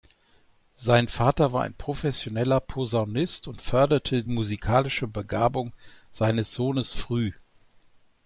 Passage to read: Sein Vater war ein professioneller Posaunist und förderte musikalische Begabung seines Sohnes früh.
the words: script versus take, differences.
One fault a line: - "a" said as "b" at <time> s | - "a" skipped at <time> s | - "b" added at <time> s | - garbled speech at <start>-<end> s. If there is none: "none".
none